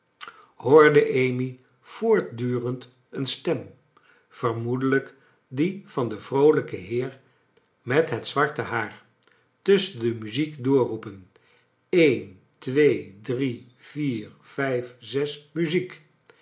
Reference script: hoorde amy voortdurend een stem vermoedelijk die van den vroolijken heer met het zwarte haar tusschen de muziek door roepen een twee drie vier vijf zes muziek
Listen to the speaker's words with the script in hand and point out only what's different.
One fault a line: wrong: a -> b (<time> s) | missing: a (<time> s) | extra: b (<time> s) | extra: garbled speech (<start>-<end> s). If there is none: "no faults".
no faults